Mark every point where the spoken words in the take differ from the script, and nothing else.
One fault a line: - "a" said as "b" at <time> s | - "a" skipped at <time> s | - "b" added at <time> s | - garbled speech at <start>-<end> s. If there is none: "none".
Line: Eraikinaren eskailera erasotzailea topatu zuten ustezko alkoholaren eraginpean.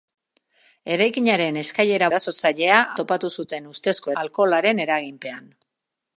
none